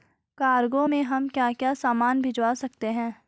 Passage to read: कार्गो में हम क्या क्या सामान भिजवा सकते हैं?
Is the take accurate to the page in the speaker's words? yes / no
yes